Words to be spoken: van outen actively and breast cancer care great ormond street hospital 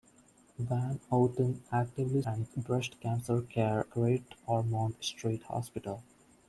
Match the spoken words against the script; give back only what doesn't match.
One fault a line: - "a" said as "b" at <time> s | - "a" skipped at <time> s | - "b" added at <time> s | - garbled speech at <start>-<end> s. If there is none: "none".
none